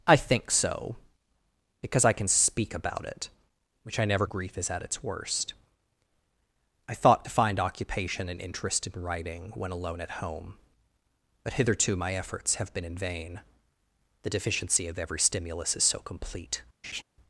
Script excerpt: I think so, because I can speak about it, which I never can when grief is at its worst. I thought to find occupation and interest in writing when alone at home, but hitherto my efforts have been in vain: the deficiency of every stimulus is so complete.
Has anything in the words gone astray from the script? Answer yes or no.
yes